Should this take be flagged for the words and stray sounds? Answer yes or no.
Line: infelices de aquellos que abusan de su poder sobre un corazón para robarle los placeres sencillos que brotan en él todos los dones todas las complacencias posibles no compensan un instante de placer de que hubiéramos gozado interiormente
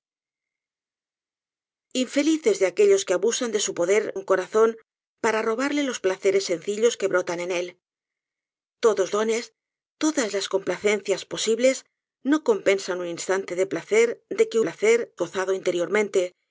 yes